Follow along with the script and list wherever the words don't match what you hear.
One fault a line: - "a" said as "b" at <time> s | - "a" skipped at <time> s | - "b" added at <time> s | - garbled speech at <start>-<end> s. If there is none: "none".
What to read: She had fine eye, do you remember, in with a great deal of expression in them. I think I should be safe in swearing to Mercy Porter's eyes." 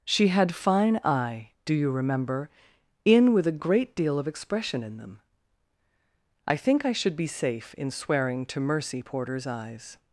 none